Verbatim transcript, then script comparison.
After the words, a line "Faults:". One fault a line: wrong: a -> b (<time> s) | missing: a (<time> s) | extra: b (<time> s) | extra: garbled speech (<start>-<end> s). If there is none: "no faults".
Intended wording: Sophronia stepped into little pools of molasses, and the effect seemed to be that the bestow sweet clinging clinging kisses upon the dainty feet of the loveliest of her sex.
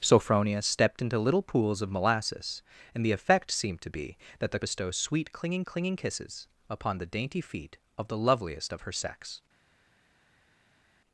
Sophronia stepped into little pools of molasses, and the effect seemed to be that the bestow sweet clinging clinging kisses upon the dainty feet of the loveliest of her sex.
Faults:
no faults